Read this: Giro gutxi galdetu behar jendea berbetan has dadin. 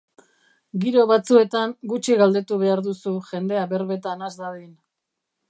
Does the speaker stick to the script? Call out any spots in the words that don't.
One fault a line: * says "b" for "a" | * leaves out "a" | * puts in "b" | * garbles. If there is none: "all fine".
* puts in "batzuetan"
* puts in "duzu"